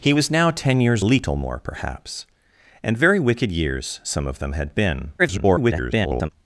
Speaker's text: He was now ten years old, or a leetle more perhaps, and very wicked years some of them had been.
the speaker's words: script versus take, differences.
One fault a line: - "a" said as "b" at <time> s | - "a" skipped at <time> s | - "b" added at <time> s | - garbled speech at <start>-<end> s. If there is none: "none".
- "old or a" skipped at 1.1 s
- garbled speech at 5.2-6.3 s